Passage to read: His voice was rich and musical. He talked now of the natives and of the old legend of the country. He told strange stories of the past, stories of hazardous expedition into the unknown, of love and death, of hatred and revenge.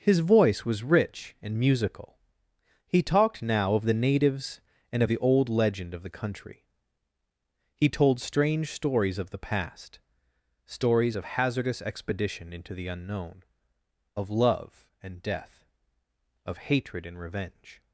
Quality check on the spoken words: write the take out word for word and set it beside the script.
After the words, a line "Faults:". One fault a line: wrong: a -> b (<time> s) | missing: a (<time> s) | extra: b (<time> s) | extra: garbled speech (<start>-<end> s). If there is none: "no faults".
His voice was rich and musical. He talked now of the natives and of the old legend of the country. He told strange stories of the past, stories of hazardous expedition into the unknown, of love and death, of hatred and revenge.
Faults:
no faults